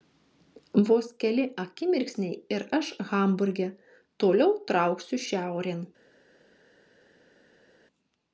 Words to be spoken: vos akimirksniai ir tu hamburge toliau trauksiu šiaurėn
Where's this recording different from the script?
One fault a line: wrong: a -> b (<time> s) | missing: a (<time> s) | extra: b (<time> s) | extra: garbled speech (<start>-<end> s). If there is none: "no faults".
extra: keli (1.2 s)
wrong: tu -> aš (2.8 s)